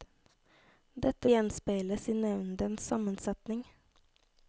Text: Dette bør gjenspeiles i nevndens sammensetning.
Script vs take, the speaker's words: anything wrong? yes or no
yes